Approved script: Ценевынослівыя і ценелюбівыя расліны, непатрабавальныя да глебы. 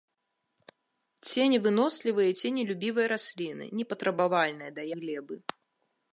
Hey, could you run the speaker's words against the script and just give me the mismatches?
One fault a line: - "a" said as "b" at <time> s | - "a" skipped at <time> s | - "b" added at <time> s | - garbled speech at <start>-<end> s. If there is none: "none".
none